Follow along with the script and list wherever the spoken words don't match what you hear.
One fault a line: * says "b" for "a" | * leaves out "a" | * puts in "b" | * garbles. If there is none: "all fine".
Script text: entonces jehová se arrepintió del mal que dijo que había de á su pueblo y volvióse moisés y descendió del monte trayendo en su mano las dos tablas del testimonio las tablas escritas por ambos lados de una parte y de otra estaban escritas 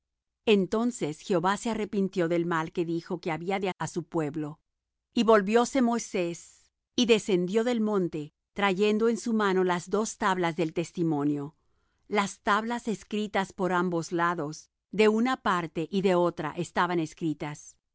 all fine